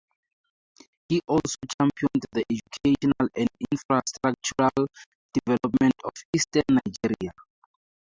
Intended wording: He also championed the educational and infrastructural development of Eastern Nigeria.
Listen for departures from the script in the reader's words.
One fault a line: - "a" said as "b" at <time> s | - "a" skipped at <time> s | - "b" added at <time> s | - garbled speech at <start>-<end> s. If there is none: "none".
none